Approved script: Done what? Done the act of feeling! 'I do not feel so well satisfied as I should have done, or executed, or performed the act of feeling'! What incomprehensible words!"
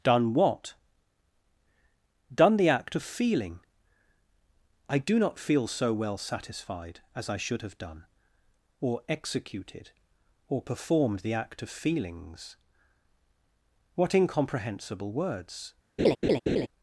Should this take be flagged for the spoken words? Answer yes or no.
yes